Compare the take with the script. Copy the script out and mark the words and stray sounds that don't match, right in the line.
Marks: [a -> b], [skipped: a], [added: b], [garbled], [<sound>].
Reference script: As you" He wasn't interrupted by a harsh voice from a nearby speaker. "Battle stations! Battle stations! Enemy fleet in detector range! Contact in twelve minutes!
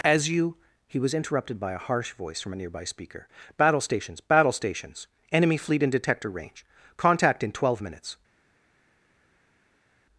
As you" He [wasn't -> was] interrupted by a harsh voice from a nearby speaker. "Battle stations! Battle stations! Enemy fleet in detector range! Contact in twelve minutes!